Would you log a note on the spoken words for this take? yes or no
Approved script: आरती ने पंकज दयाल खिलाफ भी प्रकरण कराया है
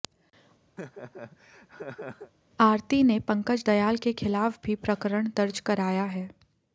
yes